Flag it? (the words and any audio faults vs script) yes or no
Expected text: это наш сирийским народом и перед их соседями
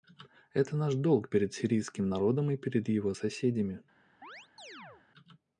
yes